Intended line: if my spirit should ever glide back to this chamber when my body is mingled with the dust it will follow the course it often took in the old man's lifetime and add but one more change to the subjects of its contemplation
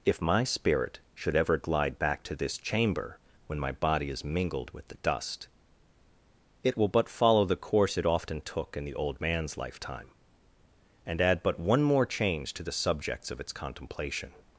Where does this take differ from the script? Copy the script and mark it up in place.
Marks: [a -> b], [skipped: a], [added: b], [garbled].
if my spirit should ever glide back to this chamber when my body is mingled with the dust it will [added: but] follow the course it often took in the old man's lifetime and add but one more change to the subjects of its contemplation